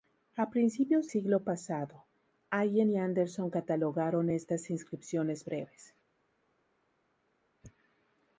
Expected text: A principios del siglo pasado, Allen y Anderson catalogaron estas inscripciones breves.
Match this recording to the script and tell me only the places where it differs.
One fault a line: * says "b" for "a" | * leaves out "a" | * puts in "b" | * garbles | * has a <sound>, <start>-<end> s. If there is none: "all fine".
* leaves out "del"